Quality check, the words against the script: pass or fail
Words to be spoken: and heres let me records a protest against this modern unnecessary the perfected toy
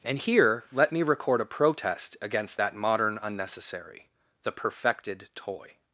fail